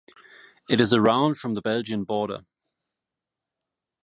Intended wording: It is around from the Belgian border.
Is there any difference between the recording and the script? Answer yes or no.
no